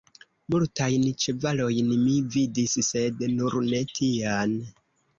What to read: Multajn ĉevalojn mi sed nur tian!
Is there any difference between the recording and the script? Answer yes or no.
yes